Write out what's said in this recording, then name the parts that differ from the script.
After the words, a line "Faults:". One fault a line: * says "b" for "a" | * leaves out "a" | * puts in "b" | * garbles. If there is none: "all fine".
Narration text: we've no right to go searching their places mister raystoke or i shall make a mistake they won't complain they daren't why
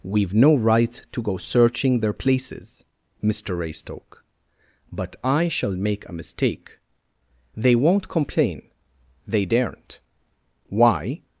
we've no right to go searching their places mister raystoke but i shall make a mistake they won't complain they daren't why
Faults:
* says "but" for "or"